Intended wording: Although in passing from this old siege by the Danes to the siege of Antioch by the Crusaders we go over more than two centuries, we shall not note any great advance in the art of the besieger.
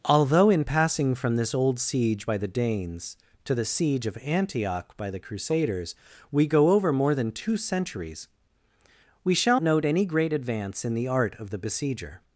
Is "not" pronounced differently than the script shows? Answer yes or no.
yes